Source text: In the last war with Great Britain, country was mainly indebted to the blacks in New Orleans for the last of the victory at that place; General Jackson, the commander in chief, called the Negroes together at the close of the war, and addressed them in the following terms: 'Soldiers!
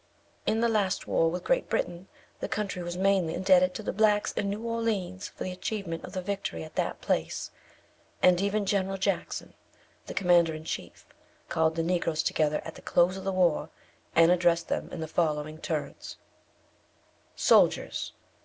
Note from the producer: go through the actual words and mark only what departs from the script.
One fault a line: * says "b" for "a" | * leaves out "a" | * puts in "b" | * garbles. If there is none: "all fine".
* puts in "the"
* says "achievement" for "last"
* puts in "and even"